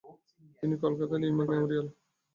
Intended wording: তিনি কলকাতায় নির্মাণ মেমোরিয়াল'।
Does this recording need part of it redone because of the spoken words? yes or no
no